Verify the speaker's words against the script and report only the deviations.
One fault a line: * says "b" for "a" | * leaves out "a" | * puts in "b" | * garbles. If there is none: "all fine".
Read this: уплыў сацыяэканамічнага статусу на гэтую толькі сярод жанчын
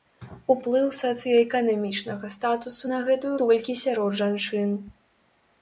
all fine